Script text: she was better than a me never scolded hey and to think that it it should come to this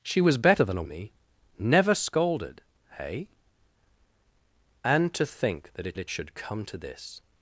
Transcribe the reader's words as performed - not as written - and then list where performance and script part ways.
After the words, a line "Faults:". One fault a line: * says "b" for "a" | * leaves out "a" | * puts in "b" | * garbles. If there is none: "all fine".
she was better than a me never scolded hey and to think that it it should come to this
Faults:
all fine